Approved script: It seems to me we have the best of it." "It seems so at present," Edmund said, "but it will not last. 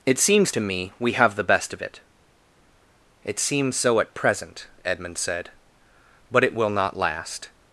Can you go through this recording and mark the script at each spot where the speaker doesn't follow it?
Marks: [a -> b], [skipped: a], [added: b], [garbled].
It seems to me we have the best of it." "It seems so at present," Edmund said, "but it will not last.